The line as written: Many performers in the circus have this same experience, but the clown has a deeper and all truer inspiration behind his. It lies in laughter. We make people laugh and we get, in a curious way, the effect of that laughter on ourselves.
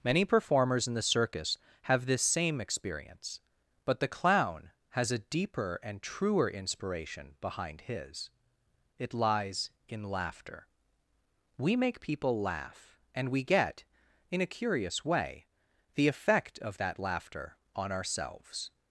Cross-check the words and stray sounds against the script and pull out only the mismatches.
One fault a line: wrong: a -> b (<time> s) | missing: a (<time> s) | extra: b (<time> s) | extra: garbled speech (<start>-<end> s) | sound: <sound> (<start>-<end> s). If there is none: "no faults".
missing: all (6.0 s)